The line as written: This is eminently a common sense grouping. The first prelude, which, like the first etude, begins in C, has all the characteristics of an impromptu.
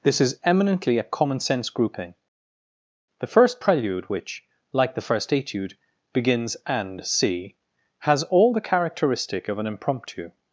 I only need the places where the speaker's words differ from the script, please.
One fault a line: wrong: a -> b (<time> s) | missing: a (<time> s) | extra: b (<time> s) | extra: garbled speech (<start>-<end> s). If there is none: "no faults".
wrong: in -> and (6.7 s)
wrong: characteristics -> characteristic (8.6 s)